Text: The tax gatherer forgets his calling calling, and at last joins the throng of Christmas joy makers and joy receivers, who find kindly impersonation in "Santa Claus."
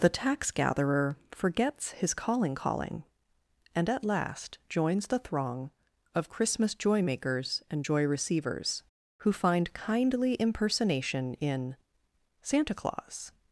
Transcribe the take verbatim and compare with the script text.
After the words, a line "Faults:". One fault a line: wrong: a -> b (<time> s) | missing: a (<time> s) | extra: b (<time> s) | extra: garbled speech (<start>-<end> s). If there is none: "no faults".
The tax gatherer forgets his calling calling, and at last joins the throng of Christmas joy makers and joy receivers, who find kindly impersonation in "Santa Claus."
Faults:
no faults